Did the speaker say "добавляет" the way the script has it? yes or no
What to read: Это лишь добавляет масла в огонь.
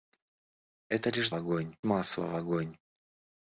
no